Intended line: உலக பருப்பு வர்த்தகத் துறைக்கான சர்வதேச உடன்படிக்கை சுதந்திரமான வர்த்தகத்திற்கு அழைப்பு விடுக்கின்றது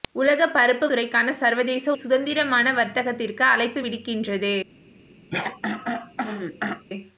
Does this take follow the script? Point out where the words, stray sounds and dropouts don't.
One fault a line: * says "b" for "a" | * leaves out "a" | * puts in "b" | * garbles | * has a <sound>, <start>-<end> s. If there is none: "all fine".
* leaves out "வர்த்தகத்"
* leaves out "உடன்படிக்கை"
* has a throat clearing, 5.3-6.9 s